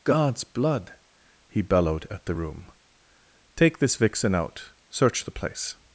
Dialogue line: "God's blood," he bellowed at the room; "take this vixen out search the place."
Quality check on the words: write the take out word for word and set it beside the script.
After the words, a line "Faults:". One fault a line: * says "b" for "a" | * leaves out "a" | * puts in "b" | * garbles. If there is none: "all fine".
"God's blood," he bellowed at the room; "take this vixen out search the place."
Faults:
all fine